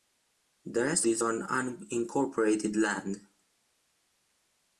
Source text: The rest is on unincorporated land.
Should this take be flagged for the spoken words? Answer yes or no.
no